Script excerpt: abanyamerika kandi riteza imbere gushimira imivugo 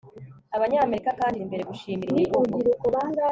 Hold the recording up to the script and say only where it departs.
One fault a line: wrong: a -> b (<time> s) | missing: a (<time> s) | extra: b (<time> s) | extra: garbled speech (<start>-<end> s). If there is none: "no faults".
missing: riteza (1.4 s)